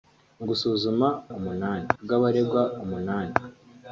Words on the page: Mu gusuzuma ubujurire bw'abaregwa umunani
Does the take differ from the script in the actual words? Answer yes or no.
yes